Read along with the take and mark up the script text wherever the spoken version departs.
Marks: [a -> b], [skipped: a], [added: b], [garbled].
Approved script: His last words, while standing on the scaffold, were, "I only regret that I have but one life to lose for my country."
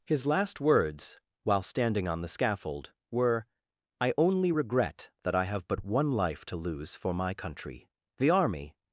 His last words, while standing on the scaffold, were, "I only regret that I have but one life to lose for my country." [added: The army]